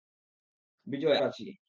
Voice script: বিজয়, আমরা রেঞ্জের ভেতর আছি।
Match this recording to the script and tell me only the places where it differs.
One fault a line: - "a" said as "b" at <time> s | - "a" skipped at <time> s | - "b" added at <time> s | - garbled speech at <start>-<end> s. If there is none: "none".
- "আমরা রেঞ্জের ভেতর" skipped at 1.2 s